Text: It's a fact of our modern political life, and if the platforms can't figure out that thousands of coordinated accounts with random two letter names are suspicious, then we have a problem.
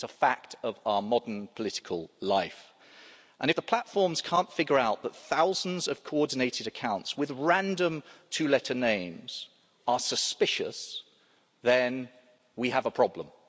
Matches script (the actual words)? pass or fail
pass